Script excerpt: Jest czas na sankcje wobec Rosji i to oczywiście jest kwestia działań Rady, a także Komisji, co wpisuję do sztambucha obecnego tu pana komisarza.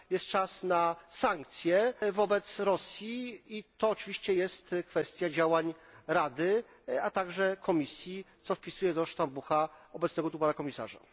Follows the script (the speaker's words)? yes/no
yes